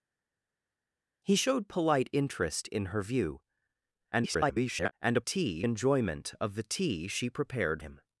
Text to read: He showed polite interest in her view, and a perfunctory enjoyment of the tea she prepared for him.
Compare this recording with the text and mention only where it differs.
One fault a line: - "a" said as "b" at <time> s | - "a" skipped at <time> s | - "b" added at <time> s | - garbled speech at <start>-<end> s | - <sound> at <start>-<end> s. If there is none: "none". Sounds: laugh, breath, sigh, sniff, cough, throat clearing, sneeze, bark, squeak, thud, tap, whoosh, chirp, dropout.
- garbled speech at 4.1-4.9 s
- "perfunctory" said as "tea" at 5.2 s
- "for" skipped at 7.8 s